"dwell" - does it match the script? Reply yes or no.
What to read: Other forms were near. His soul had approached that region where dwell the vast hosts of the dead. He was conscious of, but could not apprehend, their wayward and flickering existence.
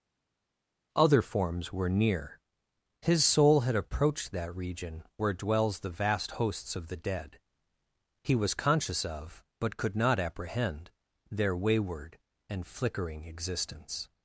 no